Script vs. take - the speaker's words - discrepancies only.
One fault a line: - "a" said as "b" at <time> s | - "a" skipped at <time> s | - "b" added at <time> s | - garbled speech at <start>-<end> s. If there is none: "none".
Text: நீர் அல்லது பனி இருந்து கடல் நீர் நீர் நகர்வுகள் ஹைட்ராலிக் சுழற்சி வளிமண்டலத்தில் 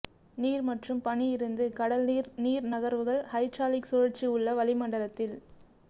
- "அல்லது" said as "மற்றும்" at 0.7 s
- "உள்ள" added at 4.3 s